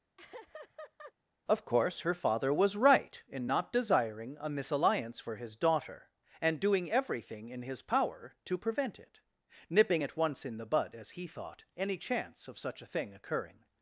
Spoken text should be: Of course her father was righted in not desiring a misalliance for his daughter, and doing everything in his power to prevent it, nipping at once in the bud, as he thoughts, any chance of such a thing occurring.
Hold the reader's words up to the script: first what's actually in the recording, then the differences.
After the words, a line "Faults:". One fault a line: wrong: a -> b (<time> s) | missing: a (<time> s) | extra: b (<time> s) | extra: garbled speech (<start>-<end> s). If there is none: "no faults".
Of course her father was right in not desiring a misalliance for his daughter, and doing everything in his power to prevent it, nipping at once in the bud, as he thought, any chance of such a thing occurring.
Faults:
wrong: righted -> right (2.7 s)
wrong: thoughts -> thought (11.3 s)